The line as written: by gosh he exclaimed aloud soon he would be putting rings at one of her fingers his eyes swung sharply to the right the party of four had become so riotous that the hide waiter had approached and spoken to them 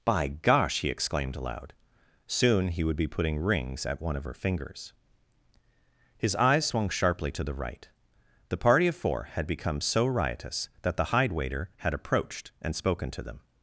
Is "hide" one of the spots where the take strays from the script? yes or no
no